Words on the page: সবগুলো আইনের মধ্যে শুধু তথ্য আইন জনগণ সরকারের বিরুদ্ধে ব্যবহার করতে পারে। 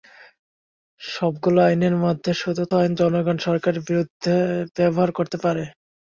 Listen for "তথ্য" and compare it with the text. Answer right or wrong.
wrong